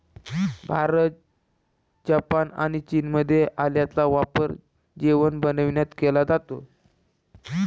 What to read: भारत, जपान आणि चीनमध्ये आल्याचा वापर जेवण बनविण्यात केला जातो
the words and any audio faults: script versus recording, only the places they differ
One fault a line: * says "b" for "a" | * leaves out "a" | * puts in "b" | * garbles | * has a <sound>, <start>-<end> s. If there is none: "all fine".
all fine